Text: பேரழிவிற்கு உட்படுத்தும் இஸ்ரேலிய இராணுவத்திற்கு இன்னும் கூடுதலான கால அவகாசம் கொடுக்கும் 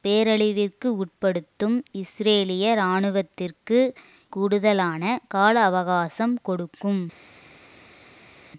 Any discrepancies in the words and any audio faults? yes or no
yes